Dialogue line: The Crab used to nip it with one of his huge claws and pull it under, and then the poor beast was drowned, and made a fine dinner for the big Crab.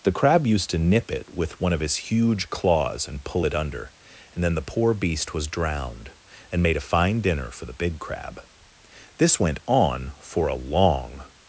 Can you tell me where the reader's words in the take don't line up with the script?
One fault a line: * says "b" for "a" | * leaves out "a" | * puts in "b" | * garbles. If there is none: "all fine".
* puts in "This went on for a long"